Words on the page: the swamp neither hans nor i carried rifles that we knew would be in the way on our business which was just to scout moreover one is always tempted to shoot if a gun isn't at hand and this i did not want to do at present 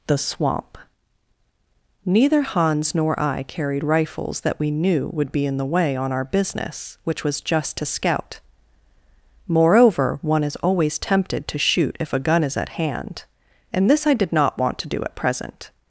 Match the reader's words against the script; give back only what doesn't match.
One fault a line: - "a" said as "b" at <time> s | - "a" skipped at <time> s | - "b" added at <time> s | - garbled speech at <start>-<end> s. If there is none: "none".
- "isn't" said as "is" at 12.4 s